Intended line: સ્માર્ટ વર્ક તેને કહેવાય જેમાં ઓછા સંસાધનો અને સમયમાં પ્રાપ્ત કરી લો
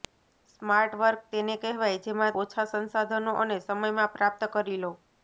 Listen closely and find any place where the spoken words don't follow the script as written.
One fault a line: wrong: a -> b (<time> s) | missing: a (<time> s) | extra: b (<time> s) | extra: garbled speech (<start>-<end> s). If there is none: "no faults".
no faults